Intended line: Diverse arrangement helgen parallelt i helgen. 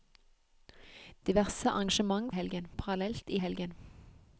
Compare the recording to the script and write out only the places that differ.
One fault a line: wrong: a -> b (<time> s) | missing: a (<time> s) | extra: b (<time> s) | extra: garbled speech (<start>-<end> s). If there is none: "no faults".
no faults